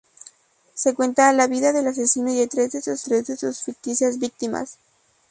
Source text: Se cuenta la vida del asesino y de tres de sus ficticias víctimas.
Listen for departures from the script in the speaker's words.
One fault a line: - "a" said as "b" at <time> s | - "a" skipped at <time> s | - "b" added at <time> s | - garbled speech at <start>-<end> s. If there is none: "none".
- "tres de sus" added at 3.0 s